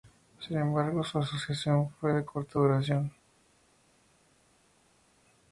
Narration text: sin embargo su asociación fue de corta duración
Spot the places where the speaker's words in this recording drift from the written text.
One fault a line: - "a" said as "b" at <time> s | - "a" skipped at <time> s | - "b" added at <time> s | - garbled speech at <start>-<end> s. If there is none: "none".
none